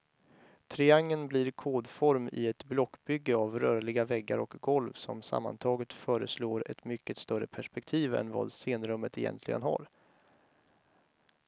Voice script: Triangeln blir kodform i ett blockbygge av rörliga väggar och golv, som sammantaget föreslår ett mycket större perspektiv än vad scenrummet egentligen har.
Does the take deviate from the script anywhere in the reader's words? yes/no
no